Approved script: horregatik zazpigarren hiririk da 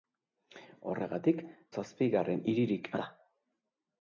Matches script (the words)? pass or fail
pass